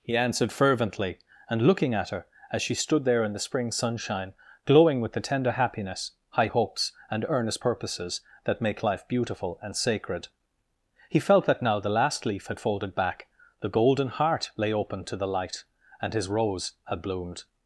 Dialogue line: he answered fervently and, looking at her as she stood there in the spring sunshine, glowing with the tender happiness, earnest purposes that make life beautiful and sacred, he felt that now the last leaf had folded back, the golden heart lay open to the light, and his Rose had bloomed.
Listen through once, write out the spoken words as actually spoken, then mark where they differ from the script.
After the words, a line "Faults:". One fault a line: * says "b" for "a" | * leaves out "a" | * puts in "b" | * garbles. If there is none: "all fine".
he answered fervently and, looking at her as she stood there in the spring sunshine, glowing with the tender happiness, high hopes, and earnest purposes that make life beautiful and sacred, he felt that now the last leaf had folded back, the golden heart lay open to the light, and his Rose had bloomed.
Faults:
* puts in "high hopes and"